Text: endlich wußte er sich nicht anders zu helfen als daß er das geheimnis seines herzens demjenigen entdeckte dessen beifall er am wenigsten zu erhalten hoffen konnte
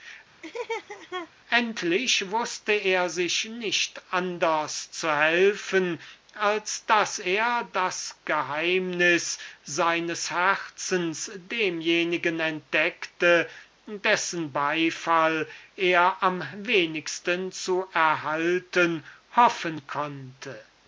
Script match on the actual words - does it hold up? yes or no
yes